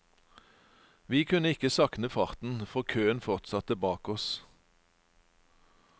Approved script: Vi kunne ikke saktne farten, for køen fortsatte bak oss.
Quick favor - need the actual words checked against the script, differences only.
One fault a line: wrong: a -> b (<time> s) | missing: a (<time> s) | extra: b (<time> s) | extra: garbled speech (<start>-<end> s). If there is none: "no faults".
no faults